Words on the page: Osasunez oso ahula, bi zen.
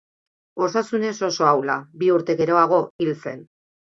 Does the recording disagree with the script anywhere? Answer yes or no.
yes